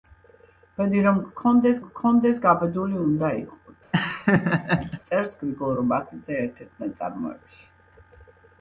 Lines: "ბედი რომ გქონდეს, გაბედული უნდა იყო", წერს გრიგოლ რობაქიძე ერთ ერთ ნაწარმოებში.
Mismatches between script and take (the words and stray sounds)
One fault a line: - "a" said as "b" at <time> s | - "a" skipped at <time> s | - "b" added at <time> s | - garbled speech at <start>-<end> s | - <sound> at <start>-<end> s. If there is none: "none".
- "გქონდეს" added at 1.8 s
- laugh at 3.9-5.0 s